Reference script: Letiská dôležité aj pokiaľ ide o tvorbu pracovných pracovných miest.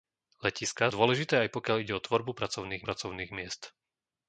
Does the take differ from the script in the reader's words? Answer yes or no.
no